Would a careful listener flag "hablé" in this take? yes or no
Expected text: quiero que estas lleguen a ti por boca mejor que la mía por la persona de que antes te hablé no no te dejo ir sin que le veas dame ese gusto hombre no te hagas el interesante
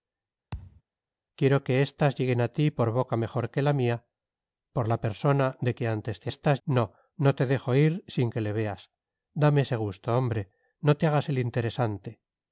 yes